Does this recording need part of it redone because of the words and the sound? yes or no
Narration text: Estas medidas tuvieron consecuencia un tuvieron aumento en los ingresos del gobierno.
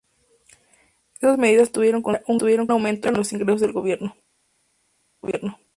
no